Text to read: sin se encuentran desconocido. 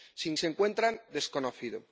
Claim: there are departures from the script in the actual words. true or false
false